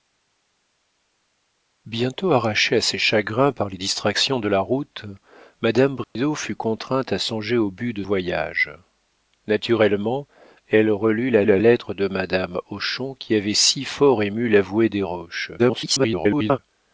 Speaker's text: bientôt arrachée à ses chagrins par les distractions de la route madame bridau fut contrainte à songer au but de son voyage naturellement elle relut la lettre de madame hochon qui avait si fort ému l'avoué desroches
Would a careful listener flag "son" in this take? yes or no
yes